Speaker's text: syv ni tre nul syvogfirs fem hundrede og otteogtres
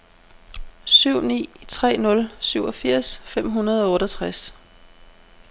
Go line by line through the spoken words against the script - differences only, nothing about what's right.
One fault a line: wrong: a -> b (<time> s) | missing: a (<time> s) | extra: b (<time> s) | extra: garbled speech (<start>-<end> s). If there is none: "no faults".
no faults